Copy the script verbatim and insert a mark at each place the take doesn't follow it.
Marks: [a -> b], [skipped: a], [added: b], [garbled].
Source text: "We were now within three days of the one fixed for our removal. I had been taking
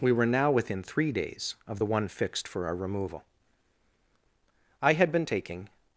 "We were now within three days of the one fixed for our removal. I had been taking